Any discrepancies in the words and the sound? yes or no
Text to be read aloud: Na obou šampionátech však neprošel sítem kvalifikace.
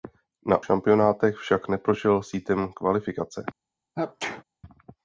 yes